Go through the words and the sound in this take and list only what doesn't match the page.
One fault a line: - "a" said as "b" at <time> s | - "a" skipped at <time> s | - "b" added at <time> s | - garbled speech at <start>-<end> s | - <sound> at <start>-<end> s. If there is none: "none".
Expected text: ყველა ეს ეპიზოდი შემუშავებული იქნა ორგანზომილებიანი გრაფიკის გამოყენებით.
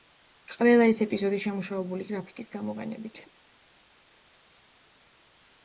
- "იქნა ორგანზომილებიანი" skipped at 2.1 s